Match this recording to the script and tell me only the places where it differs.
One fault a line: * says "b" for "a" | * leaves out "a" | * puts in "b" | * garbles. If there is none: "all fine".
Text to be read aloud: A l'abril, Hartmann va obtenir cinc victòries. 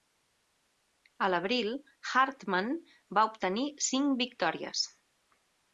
all fine